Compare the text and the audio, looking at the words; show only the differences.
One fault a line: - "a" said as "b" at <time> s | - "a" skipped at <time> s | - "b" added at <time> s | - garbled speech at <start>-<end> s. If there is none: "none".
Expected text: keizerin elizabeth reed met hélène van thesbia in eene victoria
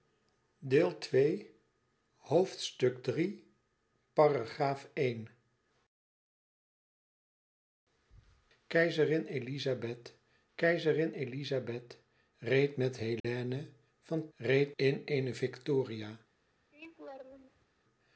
- "keizerin elizabeth" added at 10.5 s
- "thesbia" said as "reed" at 14.4 s